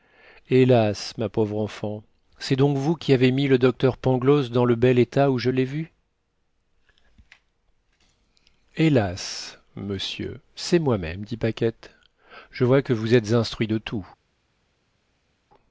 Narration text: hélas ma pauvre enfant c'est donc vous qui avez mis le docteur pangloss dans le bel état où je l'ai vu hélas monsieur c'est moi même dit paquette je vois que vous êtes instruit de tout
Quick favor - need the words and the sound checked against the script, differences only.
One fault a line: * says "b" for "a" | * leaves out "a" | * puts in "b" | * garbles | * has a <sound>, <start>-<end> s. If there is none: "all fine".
all fine